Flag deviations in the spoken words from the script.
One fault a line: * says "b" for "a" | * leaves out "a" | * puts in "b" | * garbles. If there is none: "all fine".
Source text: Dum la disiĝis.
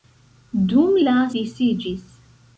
all fine